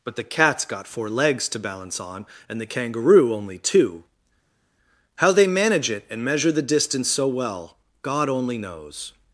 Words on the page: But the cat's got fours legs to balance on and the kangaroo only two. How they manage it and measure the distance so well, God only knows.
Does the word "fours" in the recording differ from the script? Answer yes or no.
yes